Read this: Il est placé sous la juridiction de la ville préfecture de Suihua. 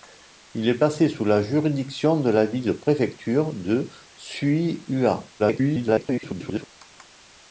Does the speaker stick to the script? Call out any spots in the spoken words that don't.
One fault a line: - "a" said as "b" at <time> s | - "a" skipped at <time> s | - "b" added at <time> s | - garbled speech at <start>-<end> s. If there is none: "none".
- garbled speech at 5.4-6.6 s